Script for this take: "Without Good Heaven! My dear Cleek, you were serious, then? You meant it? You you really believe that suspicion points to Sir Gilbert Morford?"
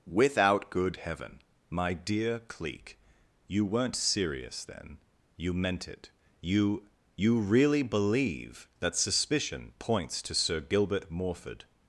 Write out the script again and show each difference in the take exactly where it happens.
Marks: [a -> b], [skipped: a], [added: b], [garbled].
"Without Good Heaven! My dear Cleek, you [were -> weren't] serious, then? You meant it? You you really believe that suspicion points to Sir Gilbert Morford?"